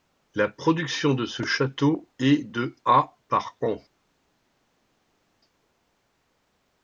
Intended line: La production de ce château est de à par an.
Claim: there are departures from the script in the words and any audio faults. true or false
false